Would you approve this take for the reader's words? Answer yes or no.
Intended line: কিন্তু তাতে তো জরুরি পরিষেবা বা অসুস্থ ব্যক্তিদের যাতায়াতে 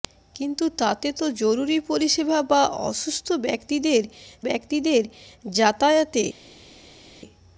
no